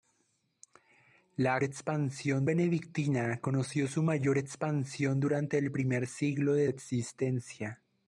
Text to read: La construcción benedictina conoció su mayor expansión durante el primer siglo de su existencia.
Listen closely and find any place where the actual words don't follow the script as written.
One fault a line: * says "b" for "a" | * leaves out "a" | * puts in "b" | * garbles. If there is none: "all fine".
* says "expansión" for "construcción"
* leaves out "su"